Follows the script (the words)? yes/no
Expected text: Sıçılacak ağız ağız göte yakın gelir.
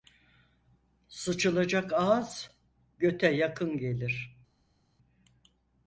no